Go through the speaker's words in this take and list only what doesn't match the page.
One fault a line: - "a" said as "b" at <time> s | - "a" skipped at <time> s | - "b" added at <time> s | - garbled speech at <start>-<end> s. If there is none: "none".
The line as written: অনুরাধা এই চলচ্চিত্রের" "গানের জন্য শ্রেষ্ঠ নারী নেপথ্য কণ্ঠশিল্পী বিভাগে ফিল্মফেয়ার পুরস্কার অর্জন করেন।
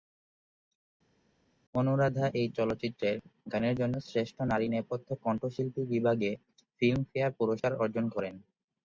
none